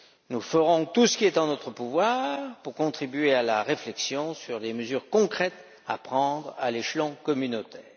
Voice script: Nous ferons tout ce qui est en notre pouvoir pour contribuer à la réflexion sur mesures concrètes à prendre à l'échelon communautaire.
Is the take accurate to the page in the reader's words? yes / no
no